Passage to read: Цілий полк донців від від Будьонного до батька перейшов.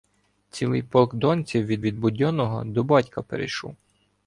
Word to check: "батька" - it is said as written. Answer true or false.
true